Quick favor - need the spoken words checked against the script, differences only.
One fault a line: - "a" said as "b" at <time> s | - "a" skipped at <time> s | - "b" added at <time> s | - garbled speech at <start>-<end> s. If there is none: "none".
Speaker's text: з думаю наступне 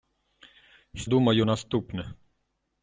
none